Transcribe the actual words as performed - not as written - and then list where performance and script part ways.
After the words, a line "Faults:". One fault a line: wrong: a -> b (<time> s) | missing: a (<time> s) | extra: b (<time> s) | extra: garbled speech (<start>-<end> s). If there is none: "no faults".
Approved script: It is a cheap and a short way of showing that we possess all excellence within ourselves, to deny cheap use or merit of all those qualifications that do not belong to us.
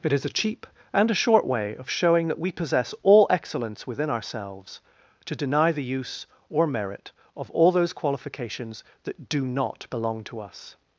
It is a cheap and a short way of showing that we possess all excellence within ourselves, to deny the use or merit of all those qualifications that do not belong to us.
Faults:
wrong: cheap -> the (5.7 s)